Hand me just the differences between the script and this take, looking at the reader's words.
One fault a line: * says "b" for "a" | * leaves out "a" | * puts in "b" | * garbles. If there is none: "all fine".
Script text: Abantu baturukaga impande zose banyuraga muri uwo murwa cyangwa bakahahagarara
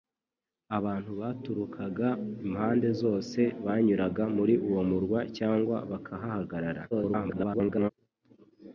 * garbles